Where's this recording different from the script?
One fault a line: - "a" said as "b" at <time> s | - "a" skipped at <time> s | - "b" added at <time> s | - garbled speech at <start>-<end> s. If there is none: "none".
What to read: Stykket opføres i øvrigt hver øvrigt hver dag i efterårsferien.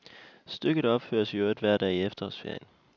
- "øvrigt hver" skipped at 1.8 s